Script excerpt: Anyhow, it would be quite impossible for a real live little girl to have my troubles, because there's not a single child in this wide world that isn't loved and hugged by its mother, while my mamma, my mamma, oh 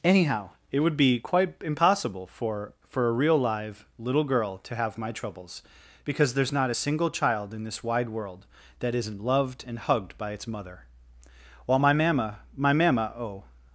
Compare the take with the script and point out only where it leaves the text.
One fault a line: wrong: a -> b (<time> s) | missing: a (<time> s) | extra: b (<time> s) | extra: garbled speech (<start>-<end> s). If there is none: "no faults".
extra: for (2.9 s)